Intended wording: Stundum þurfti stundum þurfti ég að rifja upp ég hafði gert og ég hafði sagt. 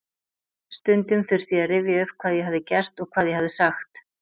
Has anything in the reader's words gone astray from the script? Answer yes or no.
yes